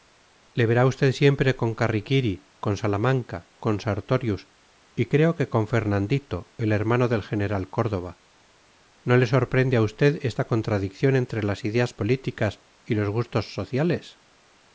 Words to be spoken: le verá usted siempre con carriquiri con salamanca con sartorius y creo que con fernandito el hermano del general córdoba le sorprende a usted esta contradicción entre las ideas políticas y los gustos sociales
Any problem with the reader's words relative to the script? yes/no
yes